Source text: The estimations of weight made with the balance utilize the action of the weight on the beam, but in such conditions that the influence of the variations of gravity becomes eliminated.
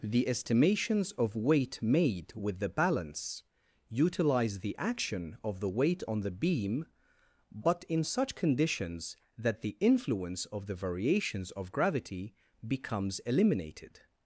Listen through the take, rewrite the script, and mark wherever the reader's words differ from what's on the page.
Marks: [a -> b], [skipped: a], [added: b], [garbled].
The estimations of weight made with the balance utilize the action of the weight on the beam, but in such conditions that the influence of the variations of gravity becomes eliminated.